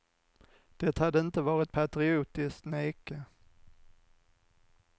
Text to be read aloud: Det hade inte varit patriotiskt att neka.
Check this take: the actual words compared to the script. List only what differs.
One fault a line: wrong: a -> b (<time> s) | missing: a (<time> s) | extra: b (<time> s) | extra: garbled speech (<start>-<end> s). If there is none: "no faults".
missing: att (2.7 s)